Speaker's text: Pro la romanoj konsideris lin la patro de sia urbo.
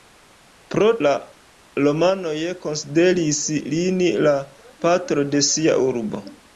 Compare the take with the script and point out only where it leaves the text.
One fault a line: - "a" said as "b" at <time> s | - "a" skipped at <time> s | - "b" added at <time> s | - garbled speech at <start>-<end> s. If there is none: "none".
none